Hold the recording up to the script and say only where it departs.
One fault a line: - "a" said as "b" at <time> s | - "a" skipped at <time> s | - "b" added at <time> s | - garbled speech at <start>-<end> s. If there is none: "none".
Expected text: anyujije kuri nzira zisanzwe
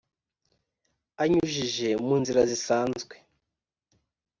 - "kuri" said as "mu" at 2.0 s